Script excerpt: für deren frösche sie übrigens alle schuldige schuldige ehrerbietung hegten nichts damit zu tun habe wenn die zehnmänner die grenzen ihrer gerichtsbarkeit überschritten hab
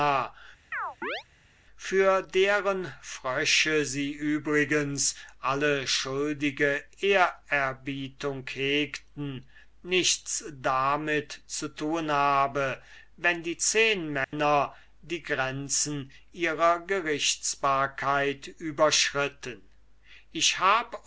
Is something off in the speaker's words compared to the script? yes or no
yes